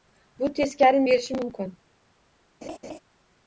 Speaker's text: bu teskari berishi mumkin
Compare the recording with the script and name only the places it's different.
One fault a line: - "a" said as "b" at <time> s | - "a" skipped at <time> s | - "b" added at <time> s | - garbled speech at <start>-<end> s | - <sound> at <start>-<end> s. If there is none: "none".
- laugh at 2.6-3.0 s